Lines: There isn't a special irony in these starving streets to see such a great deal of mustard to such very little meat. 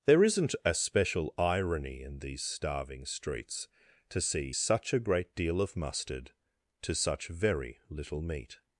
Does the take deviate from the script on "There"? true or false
false